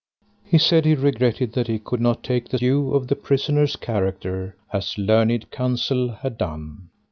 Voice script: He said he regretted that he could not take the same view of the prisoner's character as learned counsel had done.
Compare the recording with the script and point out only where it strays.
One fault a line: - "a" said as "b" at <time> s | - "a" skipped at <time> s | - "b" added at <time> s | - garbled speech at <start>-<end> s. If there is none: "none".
- "same" skipped at 2.6 s